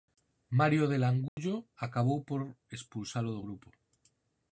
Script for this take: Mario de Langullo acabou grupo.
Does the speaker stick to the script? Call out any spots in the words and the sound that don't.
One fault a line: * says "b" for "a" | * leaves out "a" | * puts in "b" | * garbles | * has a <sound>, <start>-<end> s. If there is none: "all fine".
* has a dropout, 1.3-1.4 s
* puts in "por expulsalo do"